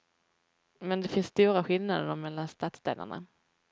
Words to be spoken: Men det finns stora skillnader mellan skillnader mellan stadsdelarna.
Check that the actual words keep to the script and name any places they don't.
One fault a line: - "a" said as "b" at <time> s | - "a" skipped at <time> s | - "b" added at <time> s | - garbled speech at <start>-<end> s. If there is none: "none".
- "skillnader mellan" skipped at 2.5 s